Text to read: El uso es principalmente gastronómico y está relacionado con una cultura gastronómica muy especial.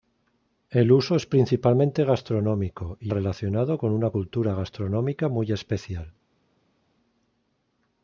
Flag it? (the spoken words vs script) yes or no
yes